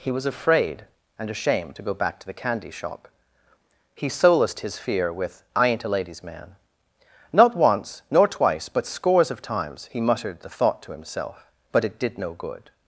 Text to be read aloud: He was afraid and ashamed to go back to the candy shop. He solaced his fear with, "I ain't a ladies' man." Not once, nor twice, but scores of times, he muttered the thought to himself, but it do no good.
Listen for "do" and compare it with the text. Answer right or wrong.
wrong